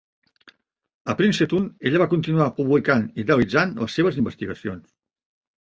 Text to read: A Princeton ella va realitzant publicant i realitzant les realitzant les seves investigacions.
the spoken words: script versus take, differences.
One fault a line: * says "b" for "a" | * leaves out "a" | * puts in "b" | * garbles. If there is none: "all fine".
* says "continuar" for "realitzant"
* leaves out "realitzant les"